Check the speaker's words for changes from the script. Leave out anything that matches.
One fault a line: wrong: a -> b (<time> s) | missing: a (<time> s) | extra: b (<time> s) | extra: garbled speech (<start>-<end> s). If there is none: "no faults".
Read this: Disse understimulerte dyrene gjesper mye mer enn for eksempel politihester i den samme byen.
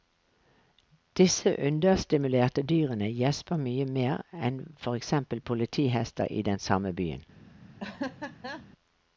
no faults